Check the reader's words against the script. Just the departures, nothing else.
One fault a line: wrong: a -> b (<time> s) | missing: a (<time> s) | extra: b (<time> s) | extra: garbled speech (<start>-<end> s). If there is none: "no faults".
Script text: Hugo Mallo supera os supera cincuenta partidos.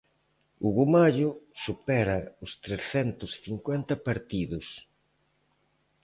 wrong: supera -> trescentos (2.6 s)